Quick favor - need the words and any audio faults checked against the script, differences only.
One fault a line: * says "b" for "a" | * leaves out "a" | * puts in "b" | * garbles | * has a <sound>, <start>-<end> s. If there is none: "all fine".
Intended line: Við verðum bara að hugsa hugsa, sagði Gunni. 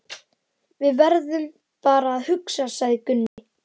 * leaves out "hugsa"
* has a dropout, 3.3-3.4 s